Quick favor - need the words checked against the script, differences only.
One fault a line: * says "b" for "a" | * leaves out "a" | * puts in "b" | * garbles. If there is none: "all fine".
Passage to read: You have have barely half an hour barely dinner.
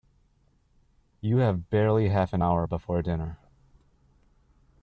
* leaves out "have"
* says "before" for "barely"